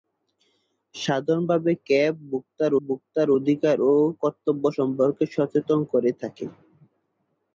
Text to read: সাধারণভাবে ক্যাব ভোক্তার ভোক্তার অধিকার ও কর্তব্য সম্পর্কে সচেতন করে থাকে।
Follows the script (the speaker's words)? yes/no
yes